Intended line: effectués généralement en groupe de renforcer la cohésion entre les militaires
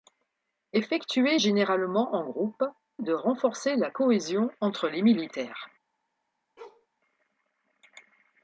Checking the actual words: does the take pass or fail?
pass